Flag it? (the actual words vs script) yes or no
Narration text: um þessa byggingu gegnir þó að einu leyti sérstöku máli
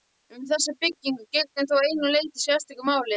no